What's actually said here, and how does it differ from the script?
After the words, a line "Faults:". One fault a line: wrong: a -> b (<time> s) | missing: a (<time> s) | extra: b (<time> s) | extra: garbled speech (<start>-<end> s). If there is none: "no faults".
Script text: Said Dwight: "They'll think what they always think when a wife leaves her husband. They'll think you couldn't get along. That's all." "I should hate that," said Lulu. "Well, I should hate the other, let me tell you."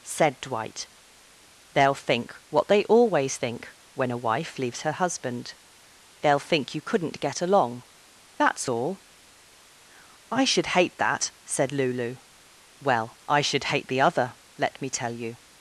Said Dwight: "They'll think what they always think when a wife leaves her husband. They'll think you couldn't get along. That's all." "I should hate that," said Lulu. "Well, I should hate the other, let me tell you."
Faults:
no faults